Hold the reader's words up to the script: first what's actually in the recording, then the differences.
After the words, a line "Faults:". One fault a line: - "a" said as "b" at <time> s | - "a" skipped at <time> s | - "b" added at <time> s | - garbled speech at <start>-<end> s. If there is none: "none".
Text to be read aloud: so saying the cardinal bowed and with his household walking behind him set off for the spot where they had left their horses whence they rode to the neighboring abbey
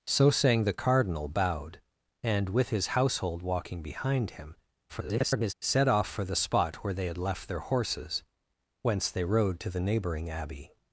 so saying the cardinal bowed and with his household walking behind him [garbled] set off for the spot where they had left their horses whence they rode to the neighboring abbey
Faults:
- garbled speech at 4.9-5.5 s